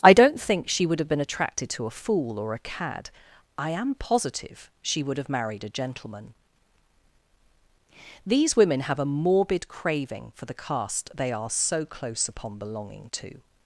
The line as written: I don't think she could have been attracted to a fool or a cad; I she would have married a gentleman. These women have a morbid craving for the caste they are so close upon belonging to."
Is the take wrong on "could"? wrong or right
wrong